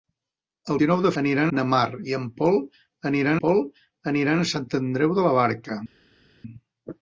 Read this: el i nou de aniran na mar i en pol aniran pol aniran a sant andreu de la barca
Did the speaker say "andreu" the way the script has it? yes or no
yes